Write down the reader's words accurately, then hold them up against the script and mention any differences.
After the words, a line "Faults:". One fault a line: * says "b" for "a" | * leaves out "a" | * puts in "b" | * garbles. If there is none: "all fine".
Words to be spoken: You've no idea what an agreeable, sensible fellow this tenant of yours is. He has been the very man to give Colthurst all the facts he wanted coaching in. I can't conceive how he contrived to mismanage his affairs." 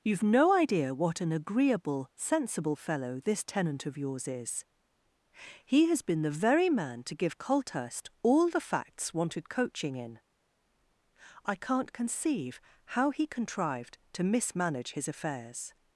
You've no idea what an agreeable, sensible fellow this tenant of yours is. He has been the very man to give Colthurst all the facts wanted coaching in. I can't conceive how he contrived to mismanage his affairs."
Faults:
* leaves out "he"